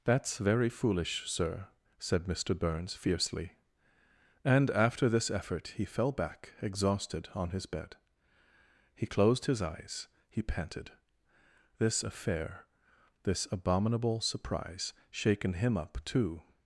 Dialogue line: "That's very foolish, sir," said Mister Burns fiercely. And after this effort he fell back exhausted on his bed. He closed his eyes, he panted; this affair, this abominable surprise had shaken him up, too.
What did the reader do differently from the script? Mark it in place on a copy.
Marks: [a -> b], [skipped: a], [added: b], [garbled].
"That's very foolish, sir," said Mister Burns fiercely. And after this effort he fell back exhausted on his bed. He closed his eyes, he panted; this affair, this abominable surprise [skipped: had] shaken him up, too.